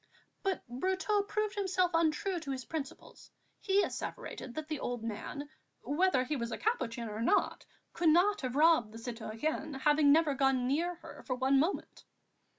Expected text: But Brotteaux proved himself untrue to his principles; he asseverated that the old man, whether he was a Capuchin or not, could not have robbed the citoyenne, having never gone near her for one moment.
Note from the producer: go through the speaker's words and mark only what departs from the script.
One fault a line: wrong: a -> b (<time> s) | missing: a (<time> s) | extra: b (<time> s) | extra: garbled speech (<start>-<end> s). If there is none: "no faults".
no faults